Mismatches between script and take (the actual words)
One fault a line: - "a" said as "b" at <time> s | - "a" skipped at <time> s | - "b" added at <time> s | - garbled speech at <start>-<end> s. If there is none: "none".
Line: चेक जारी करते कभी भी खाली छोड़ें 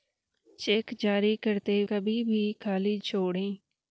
none